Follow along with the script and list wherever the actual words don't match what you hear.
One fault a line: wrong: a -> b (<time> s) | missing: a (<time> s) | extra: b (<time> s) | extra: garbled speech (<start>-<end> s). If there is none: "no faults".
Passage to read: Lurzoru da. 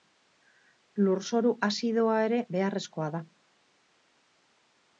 extra: azidoa ere beharrezkoa (1.7 s)